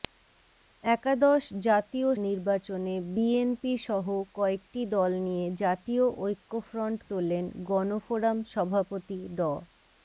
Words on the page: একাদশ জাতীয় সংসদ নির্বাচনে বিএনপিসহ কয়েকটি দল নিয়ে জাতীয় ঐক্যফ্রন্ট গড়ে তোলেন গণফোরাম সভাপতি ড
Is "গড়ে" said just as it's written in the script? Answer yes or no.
no